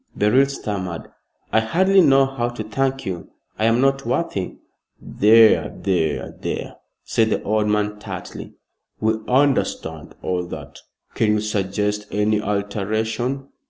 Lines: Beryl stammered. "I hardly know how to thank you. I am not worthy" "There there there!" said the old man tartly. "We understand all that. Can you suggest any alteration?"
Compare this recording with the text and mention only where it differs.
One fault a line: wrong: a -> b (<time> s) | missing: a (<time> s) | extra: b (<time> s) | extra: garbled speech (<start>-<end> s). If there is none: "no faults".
no faults